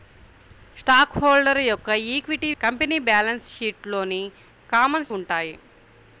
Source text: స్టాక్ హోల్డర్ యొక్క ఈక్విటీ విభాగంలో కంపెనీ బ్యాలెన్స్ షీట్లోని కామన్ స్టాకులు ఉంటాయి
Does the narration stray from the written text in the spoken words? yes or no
yes